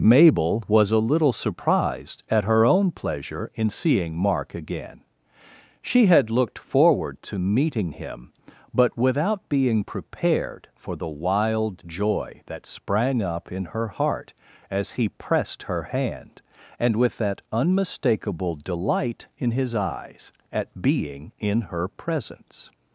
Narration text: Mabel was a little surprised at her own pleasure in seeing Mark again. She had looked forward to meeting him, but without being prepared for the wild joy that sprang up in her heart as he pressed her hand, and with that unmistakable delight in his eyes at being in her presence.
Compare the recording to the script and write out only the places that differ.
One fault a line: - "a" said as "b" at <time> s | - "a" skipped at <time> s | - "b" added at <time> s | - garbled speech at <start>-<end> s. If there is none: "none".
none